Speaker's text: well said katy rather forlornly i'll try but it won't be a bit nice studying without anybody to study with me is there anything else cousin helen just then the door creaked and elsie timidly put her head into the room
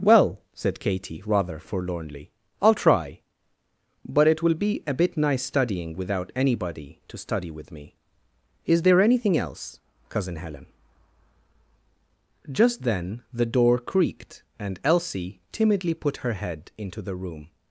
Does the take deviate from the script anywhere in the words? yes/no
yes